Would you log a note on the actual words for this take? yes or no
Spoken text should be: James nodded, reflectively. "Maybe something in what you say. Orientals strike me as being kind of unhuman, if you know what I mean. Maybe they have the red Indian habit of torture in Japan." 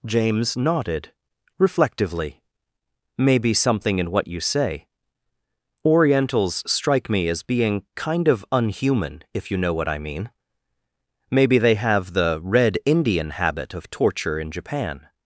no